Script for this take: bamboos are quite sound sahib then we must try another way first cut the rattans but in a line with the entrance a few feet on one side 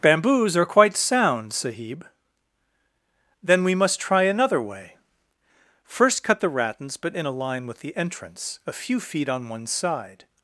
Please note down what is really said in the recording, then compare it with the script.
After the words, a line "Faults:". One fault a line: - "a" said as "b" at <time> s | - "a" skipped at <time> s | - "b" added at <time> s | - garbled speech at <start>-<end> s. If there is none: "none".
bamboos are quite sound sahib then we must try another way first cut the rattans but in a line with the entrance a few feet on one side
Faults:
none